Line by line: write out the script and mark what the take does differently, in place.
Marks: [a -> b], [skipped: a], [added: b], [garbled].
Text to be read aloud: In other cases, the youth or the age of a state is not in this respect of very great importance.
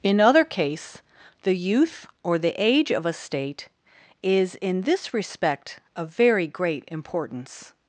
In other [cases, -> case] the youth or the age of a state is [skipped: not] in this respect of very great importance.